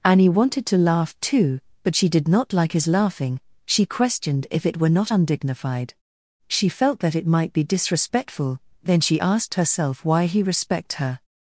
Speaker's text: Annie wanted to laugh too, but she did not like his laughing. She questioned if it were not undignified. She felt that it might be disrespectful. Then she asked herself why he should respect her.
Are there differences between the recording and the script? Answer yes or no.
yes